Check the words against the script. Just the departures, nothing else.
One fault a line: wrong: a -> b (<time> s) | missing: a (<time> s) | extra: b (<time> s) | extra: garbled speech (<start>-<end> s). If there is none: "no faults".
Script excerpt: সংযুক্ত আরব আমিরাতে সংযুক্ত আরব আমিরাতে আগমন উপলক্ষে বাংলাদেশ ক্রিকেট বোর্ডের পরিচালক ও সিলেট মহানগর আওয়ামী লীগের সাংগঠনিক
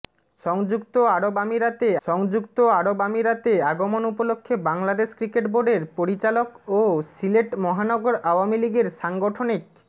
no faults